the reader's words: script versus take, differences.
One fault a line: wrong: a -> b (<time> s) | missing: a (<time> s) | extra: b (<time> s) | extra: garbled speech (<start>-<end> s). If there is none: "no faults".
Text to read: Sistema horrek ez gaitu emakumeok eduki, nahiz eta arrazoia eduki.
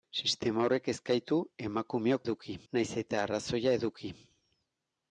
no faults